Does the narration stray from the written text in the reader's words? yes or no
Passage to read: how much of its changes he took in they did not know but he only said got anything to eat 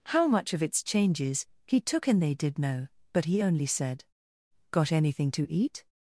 yes